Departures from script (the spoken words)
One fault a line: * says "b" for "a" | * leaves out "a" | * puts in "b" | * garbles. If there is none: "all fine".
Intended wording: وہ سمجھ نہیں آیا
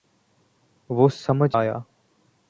* leaves out "نہیں"